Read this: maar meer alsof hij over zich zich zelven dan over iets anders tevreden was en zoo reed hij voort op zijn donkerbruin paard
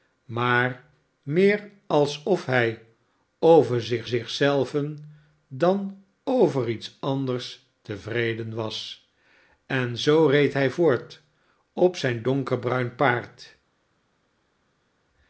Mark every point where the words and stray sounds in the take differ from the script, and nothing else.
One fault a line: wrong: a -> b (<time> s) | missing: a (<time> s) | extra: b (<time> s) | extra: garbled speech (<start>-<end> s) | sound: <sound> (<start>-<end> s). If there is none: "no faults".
no faults